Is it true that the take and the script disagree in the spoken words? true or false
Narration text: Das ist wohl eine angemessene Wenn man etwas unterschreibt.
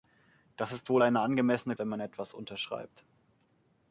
false